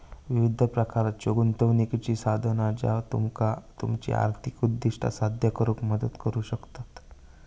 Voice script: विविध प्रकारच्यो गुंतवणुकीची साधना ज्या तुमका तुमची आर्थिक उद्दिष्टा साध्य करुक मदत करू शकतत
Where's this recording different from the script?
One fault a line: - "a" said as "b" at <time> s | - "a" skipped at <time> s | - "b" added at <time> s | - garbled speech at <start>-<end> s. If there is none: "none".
none